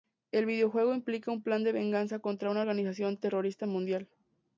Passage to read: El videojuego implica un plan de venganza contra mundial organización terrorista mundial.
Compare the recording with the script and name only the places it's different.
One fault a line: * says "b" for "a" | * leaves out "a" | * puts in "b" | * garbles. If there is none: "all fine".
* says "una" for "mundial"